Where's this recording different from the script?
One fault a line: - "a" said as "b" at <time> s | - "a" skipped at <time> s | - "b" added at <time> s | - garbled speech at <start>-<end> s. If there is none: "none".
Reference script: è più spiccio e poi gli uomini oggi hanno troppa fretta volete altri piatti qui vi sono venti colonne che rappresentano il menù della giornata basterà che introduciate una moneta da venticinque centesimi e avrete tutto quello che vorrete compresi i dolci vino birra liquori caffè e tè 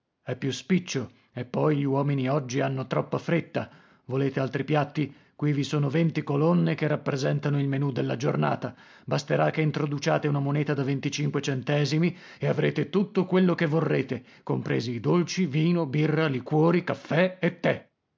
none